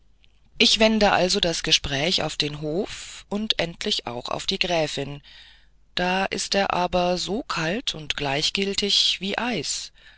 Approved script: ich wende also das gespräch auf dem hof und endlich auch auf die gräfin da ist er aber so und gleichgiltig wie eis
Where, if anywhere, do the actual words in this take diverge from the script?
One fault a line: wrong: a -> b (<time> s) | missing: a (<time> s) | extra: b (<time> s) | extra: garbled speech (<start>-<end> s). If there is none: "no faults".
wrong: dem -> den (2.4 s)
extra: kalt (7.4 s)